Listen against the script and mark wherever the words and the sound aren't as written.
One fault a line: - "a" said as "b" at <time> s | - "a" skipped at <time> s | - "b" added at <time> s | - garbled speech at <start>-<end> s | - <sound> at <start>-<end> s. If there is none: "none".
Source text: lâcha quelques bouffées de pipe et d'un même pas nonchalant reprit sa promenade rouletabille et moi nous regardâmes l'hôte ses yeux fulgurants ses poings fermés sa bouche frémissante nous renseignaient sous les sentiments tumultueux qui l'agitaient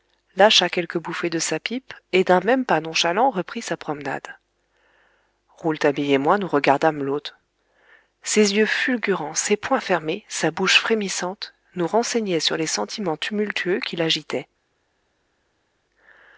- "sa" added at 1.4 s
- "sous" said as "sur" at 12.4 s